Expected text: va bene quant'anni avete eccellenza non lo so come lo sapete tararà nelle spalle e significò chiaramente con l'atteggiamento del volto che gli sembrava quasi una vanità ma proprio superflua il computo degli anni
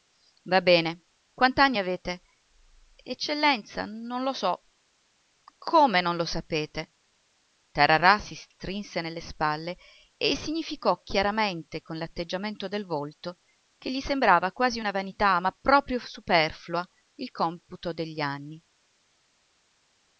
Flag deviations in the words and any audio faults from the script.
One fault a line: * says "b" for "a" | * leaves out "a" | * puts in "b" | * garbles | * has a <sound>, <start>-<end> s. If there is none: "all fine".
* puts in "non"
* puts in "si strinse"